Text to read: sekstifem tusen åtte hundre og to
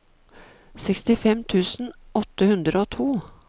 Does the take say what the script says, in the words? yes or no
yes